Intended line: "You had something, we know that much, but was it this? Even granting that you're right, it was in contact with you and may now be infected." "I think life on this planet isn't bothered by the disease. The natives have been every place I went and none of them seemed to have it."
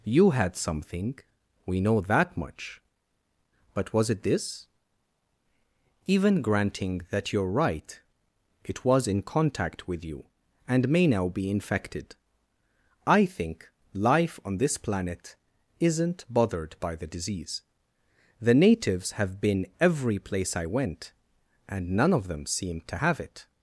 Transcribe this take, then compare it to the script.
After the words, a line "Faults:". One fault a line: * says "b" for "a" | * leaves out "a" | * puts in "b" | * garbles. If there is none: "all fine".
"You had something, we know that much, but was it this? Even granting that you're right, it was in contact with you and may now be infected." "I think life on this planet isn't bothered by the disease. The natives have been every place I went and none of them seemed to have it."
Faults:
all fine